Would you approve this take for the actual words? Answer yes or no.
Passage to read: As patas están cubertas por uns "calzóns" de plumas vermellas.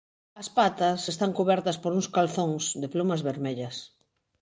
yes